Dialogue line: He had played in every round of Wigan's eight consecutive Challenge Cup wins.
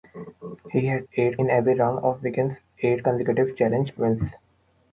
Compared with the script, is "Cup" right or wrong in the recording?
wrong